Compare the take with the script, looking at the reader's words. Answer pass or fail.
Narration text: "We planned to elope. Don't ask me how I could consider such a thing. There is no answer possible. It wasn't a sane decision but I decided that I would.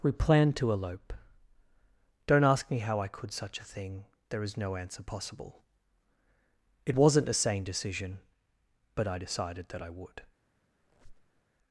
fail